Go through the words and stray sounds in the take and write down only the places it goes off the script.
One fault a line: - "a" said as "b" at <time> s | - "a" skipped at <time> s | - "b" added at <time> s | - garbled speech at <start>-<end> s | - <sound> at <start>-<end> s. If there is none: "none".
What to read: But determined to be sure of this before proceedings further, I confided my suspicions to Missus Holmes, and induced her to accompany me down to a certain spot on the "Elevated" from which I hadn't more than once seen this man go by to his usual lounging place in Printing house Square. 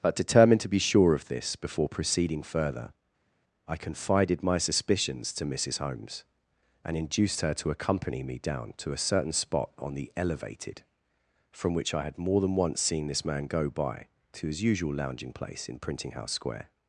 - "proceedings" said as "proceeding" at 1.9 s
- "hadn't" said as "had" at 12.0 s